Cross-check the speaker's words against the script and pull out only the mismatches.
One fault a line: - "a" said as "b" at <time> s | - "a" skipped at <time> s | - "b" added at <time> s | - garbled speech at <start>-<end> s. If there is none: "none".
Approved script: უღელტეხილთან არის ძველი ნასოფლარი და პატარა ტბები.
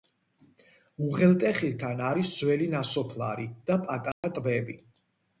none